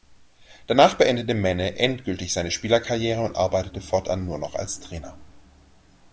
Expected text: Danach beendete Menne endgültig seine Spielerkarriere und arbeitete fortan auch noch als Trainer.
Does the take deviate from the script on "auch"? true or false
true